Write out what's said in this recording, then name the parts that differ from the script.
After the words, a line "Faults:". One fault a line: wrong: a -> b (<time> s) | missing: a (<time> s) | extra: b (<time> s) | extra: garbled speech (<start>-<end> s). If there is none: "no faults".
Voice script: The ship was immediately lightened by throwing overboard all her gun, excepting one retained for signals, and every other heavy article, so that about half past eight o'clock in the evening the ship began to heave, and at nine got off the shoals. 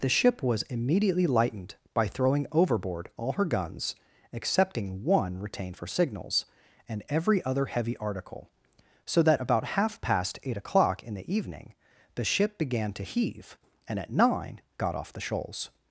The ship was immediately lightened by throwing overboard all her guns, excepting one retained for signals, and every other heavy article, so that about half past eight o'clock in the evening the ship began to heave, and at nine got off the shoals.
Faults:
wrong: gun -> guns (3.5 s)